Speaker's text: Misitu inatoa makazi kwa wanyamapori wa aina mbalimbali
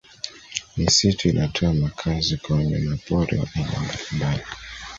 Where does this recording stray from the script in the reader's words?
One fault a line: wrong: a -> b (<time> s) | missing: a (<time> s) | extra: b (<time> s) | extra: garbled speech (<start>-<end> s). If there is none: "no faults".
no faults